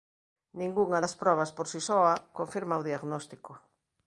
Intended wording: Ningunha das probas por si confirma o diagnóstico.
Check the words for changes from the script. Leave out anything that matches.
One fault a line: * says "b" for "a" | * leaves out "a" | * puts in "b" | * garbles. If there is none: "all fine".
* puts in "soa"